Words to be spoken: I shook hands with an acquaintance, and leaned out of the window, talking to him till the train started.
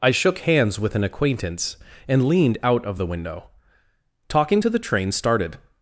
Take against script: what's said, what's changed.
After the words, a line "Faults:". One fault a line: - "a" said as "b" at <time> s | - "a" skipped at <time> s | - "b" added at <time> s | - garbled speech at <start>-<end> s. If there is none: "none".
I shook hands with an acquaintance, and leaned out of the window, talking to the train started.
Faults:
- "him till" skipped at 4.7 s